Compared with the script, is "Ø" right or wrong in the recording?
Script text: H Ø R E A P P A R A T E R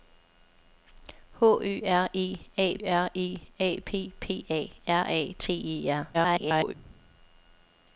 right